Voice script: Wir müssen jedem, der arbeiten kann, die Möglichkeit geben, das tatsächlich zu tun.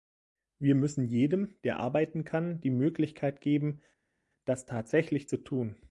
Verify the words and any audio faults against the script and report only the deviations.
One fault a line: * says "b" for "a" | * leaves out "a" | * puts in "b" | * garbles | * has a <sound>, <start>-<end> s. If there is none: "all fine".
all fine